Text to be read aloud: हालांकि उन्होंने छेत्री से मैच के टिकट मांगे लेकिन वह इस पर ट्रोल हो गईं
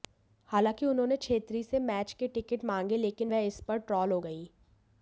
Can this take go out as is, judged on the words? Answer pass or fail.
pass